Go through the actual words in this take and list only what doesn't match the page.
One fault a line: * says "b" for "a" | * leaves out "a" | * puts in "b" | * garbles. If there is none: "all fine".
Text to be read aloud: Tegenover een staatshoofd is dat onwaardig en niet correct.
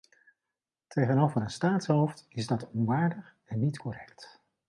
all fine